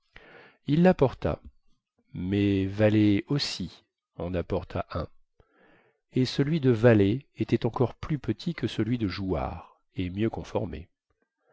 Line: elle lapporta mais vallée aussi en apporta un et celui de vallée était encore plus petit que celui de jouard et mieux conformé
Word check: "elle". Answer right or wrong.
wrong